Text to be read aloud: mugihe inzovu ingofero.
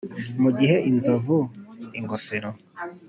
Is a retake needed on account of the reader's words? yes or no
no